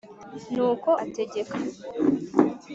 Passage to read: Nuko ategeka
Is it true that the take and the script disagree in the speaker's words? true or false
false